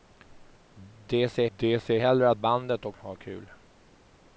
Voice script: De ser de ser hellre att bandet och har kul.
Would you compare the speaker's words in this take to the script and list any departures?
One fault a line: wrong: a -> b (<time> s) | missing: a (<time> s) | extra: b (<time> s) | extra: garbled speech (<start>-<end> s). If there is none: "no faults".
no faults